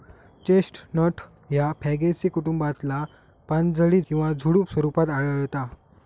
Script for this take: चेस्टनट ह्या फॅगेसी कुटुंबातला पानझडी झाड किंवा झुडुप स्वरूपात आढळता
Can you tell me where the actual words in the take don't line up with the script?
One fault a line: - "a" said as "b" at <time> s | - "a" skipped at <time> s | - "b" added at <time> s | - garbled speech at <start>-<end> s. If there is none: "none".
- "झाड" skipped at 4.0 s